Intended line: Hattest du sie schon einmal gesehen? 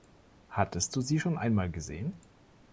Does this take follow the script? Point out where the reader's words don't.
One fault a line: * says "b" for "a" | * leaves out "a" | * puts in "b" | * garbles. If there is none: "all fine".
all fine